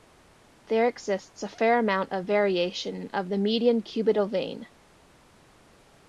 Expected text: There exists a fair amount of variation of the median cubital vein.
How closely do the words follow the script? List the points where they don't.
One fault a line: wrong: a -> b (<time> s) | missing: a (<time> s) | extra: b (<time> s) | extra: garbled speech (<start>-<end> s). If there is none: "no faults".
no faults